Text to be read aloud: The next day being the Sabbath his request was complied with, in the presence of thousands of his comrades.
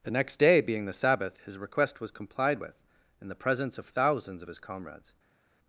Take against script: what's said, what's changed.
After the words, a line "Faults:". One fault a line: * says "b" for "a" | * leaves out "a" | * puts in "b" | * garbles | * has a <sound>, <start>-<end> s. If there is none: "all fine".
The next day being the Sabbath his request was complied with, in the presence of thousands of his comrades.
Faults:
all fine